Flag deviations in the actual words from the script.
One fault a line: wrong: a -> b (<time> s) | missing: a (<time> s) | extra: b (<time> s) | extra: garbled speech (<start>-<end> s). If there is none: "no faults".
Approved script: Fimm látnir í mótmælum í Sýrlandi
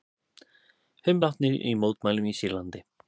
no faults